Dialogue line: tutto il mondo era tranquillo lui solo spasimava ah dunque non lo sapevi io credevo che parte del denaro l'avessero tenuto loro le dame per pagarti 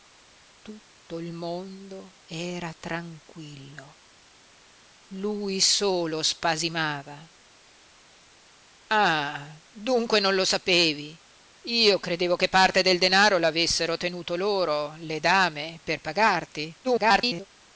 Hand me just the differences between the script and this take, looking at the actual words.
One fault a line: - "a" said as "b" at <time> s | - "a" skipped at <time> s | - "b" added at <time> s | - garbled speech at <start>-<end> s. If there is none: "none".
- garbled speech at 16.8-17.5 s